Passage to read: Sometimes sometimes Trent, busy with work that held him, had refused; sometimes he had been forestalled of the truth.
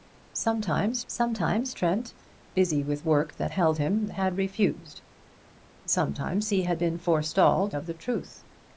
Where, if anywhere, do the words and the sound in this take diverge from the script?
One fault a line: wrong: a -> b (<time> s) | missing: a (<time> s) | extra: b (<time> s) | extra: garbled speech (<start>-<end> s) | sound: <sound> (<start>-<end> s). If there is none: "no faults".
no faults